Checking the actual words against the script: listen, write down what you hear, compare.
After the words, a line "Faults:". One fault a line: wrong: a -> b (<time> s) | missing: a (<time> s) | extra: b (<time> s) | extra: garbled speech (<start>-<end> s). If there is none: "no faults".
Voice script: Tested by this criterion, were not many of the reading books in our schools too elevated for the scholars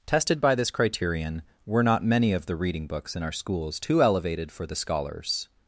Tested by this criterion, were not many of the reading books in our schools too elevated for the scholars
Faults:
no faults